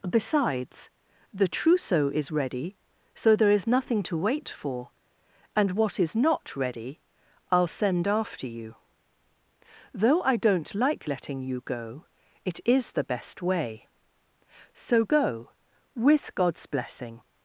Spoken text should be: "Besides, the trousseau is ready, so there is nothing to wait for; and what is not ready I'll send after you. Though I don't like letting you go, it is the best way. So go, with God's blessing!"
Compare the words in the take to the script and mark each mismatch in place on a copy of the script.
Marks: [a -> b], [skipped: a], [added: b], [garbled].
"Besides, the trousseau is ready, so there is nothing to wait for; and what is not ready I'll send after you. Though I don't like letting you go, it is the best way. So go, with God's blessing!"